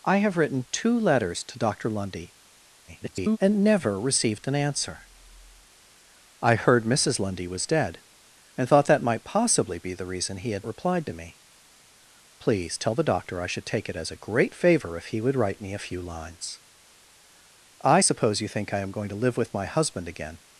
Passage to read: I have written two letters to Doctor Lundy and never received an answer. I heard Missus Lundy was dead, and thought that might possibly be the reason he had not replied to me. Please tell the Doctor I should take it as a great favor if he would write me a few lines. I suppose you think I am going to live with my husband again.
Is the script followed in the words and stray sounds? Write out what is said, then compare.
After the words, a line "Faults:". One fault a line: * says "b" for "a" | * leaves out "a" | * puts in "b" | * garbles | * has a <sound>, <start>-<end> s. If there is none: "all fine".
I have written two letters to Doctor Lundy [garbled] and never received an answer. I heard Missus Lundy was dead, and thought that might possibly be the reason he had replied to me. Please tell the Doctor I should take it as a great favor if he would write me a few lines. I suppose you think I am going to live with my husband again.
Faults:
* garbles
* leaves out "not"